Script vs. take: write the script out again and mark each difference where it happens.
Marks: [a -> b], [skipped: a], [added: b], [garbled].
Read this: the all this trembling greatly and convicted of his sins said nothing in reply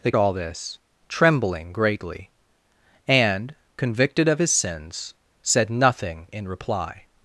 the all this trembling greatly and convicted of his sins said nothing in reply